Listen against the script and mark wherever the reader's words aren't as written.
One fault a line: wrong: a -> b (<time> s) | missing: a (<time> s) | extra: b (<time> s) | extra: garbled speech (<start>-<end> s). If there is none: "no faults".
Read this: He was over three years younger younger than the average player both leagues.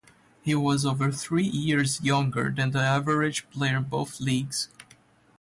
missing: younger (2.5 s)
extra: in (3.8 s)